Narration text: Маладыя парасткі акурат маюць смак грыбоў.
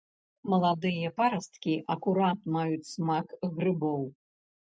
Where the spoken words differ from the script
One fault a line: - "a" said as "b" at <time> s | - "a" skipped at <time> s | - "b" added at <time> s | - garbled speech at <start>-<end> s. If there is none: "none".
none